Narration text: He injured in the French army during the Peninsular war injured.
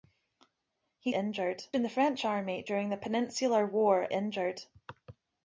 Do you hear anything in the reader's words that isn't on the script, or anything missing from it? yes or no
no